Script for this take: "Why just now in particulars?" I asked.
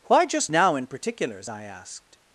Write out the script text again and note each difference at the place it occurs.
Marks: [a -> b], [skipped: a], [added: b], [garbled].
"Why just now in particulars?" I asked.